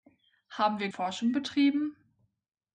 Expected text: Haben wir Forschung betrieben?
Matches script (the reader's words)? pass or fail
pass